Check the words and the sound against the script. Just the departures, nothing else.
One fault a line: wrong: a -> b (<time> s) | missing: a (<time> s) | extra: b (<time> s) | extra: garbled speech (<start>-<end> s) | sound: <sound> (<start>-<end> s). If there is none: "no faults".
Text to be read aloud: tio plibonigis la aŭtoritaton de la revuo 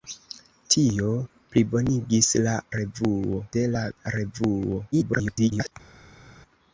wrong: aŭtoritaton -> revuo (2.8 s)
extra: garbled speech (4.9-5.7 s)